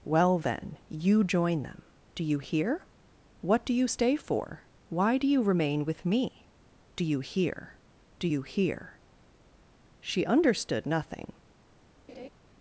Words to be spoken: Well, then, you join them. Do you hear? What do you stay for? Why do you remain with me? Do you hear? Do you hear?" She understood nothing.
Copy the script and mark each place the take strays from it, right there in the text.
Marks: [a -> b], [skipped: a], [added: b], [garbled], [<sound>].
Well, then, you join them. Do you hear? What do you stay for? Why do you remain with me? Do you hear? Do you hear?" She understood nothing. [laugh]